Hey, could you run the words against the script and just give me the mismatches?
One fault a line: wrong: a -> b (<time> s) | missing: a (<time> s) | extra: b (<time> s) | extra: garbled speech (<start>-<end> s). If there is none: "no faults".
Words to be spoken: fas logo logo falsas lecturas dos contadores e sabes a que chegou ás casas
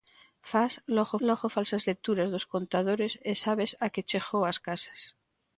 no faults